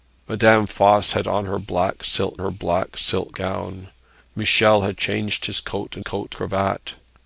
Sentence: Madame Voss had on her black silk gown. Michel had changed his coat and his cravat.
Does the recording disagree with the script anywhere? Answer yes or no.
yes